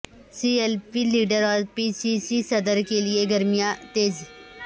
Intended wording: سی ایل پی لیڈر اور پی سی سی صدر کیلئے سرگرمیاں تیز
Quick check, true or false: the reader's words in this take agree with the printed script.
true